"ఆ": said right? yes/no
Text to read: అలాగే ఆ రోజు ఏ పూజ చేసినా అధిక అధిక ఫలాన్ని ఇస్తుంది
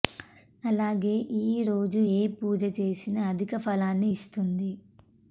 no